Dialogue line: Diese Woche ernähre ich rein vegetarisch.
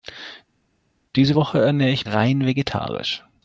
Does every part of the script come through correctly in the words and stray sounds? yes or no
yes